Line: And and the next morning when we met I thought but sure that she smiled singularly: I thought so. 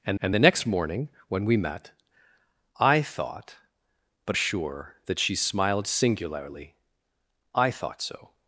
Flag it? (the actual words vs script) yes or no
no